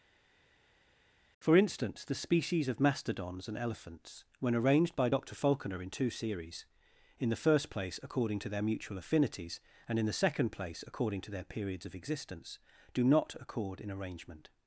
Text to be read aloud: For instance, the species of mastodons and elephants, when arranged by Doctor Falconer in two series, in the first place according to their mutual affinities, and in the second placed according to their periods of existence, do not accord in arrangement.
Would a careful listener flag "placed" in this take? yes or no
yes